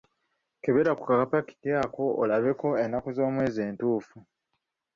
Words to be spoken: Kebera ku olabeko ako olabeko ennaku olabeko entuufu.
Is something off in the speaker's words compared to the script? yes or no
yes